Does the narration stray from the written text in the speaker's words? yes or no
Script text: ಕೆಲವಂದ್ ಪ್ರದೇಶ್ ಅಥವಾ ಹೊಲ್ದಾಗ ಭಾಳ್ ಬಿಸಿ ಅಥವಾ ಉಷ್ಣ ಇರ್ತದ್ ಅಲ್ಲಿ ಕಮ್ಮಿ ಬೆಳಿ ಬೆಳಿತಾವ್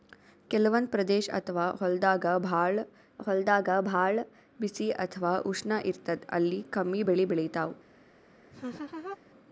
yes